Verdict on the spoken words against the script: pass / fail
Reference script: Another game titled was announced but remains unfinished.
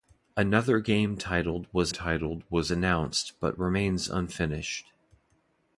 fail